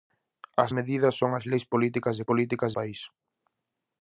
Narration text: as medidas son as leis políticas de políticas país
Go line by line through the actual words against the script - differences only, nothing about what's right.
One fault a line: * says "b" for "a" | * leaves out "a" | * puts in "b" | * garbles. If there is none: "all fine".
all fine